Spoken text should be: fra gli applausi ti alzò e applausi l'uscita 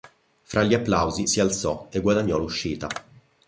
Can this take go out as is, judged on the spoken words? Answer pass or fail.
fail